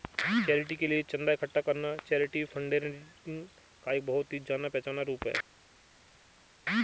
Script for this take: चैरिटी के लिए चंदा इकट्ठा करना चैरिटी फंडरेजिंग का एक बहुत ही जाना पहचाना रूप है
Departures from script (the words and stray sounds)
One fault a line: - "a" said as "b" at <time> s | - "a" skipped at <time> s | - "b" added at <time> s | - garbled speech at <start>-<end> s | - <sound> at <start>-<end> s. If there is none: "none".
none